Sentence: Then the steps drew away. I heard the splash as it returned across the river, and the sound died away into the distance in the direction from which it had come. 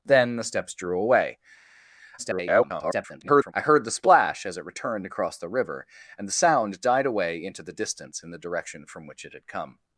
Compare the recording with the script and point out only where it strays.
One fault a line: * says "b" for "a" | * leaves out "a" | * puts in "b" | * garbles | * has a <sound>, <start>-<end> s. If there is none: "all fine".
* garbles